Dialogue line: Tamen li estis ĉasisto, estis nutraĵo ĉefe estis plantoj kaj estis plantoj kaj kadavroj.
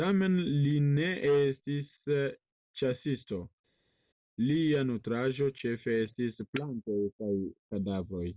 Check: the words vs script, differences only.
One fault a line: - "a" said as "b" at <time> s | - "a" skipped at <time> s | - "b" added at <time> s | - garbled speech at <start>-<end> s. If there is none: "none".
- "ne" added at 0.8 s
- "estis" said as "lia" at 4.4 s
- "estis plantoj kaj" skipped at 7.3 s